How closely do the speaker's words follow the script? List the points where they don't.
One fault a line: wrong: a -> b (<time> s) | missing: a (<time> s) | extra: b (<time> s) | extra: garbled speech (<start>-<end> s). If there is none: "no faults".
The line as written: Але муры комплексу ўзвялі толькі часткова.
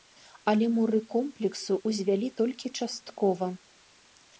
no faults